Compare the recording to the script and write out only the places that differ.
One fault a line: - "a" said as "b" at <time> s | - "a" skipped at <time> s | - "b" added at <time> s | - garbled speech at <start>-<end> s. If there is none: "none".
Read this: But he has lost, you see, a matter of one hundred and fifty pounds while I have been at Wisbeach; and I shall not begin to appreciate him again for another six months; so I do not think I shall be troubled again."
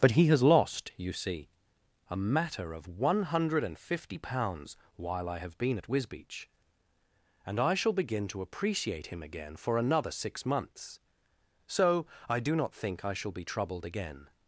- "not" skipped at 7.9 s